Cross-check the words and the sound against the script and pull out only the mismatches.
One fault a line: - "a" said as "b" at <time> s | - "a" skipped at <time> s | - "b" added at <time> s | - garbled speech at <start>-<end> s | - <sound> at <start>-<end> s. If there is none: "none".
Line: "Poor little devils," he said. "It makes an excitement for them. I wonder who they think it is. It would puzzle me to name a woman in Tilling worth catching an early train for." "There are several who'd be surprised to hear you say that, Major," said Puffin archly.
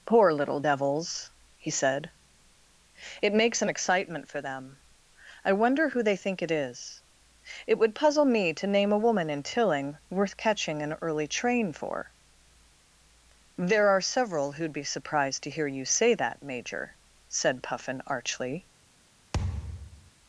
- thud at 19.3-20.1 s